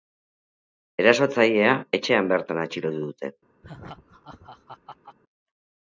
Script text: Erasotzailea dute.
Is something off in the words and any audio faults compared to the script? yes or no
yes